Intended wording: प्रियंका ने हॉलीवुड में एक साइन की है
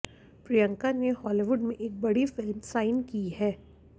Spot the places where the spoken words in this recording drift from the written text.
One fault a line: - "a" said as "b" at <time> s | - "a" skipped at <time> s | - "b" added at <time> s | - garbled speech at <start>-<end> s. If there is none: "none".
- "बड़ी फिल्म" added at 2.0 s